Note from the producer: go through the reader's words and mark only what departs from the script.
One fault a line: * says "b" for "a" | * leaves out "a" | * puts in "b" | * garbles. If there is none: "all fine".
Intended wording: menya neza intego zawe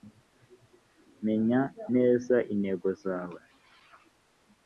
all fine